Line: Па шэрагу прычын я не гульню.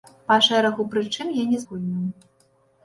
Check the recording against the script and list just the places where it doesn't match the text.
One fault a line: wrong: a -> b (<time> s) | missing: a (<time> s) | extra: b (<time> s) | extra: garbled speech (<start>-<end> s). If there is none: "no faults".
no faults